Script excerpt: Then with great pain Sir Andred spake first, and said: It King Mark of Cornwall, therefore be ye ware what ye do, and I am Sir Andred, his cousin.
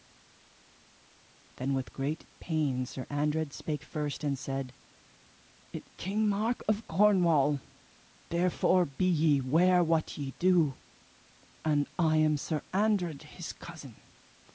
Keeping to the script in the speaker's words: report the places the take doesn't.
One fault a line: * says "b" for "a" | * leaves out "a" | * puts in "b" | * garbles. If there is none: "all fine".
all fine